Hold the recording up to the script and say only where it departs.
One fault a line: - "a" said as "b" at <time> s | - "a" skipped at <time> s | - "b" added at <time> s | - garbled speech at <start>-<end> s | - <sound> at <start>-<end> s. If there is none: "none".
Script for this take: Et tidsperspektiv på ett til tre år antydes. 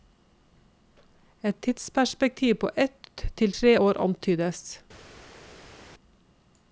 none